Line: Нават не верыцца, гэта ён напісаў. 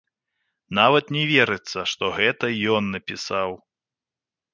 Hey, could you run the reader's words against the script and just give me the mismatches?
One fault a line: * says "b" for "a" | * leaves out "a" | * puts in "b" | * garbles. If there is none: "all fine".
* puts in "што"